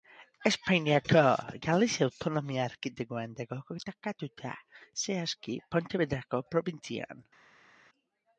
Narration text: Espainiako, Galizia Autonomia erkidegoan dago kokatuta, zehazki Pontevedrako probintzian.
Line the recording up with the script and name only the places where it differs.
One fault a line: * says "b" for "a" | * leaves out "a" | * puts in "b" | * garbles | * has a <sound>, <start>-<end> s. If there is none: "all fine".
all fine